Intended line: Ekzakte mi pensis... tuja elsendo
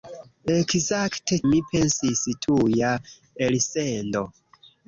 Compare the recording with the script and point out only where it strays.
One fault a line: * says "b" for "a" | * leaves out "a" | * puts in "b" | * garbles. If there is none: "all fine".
all fine